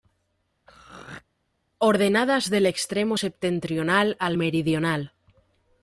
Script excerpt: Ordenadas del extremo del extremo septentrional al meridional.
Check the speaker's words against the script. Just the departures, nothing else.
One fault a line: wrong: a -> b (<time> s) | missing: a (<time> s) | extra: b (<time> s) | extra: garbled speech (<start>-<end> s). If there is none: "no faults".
missing: del extremo (3.2 s)